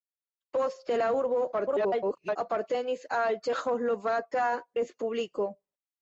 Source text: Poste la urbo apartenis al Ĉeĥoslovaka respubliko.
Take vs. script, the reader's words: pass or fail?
fail